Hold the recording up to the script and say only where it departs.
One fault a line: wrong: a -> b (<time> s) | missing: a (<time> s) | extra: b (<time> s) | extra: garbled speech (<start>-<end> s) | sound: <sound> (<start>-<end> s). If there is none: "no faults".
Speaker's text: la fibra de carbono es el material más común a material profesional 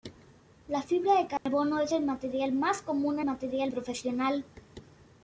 sound: dropout (1.4-1.5 s)